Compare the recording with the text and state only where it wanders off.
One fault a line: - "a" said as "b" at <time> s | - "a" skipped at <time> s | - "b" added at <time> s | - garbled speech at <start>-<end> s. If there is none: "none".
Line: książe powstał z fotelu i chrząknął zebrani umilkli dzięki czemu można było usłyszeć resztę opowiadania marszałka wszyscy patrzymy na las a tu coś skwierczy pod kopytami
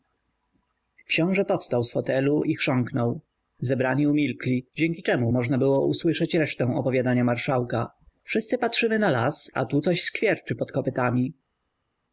none